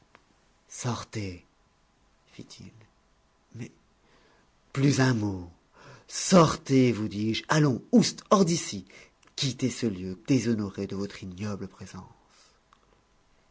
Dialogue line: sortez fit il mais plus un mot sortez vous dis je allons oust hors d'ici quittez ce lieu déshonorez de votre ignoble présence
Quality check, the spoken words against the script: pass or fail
pass